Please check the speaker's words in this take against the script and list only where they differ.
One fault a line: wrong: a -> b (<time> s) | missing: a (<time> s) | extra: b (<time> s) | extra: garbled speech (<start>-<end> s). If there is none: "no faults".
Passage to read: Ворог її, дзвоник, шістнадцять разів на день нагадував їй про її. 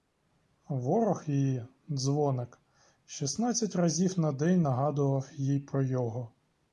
wrong: її -> його (5.8 s)